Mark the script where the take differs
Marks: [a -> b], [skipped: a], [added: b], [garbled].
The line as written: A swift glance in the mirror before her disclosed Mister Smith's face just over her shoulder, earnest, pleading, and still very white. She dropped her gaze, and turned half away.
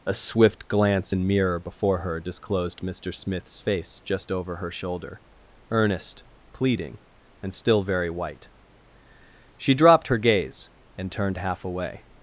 A swift glance in [skipped: the] mirror before her disclosed Mister Smith's face just over her shoulder, earnest, pleading, and still very white. She dropped her gaze, and turned half away.